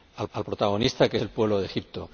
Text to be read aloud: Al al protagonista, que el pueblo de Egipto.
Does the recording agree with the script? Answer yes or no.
yes